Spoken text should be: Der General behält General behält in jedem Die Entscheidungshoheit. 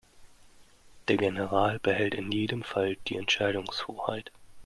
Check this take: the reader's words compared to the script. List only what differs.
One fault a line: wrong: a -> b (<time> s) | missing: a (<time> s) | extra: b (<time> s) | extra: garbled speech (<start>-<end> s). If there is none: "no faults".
missing: General behält (2.1 s)
extra: Fall (2.6 s)